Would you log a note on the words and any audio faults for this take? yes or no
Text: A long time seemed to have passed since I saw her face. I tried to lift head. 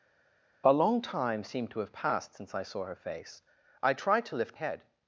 no